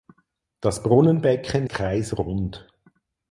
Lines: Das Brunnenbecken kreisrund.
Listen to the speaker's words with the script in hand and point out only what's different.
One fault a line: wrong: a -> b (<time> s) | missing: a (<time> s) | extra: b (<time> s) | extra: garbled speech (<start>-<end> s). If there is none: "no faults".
no faults